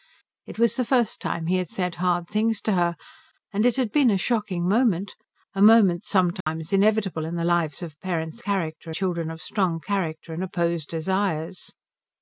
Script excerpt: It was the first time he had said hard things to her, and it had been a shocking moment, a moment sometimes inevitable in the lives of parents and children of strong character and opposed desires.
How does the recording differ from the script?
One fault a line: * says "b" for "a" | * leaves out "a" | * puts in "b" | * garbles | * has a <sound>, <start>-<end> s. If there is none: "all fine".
* has a dropout, 6.4-6.5 s
* says "character" for "and"